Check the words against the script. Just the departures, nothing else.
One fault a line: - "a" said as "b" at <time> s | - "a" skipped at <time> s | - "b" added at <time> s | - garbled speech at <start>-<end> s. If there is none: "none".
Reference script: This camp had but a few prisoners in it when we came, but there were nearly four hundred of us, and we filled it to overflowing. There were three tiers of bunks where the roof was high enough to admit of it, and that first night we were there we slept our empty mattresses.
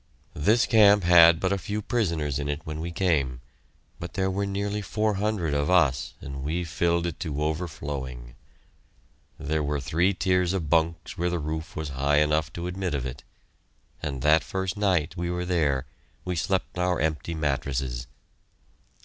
none